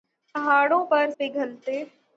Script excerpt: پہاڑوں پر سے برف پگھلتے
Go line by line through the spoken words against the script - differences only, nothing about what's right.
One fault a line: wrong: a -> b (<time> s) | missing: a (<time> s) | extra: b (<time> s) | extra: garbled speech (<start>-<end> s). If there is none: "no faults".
missing: سے برف (1.1 s)